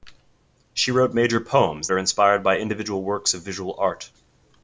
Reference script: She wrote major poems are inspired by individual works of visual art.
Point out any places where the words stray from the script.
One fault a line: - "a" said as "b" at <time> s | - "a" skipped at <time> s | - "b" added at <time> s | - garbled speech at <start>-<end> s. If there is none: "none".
none